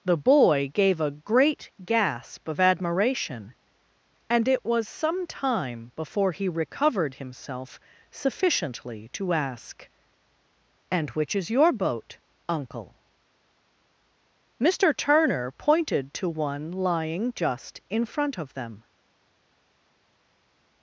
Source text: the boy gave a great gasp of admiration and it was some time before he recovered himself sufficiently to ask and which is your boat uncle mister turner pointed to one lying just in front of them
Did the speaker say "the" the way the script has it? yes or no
yes